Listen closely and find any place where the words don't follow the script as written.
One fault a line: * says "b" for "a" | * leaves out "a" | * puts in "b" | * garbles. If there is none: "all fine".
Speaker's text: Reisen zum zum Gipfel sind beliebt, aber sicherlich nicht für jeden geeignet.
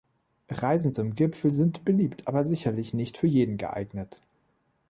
* leaves out "zum"